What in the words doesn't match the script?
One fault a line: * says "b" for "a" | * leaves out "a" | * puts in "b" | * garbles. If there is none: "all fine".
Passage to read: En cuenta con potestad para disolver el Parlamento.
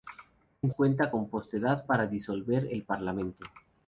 all fine